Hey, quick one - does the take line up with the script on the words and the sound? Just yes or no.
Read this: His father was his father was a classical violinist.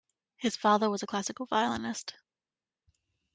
no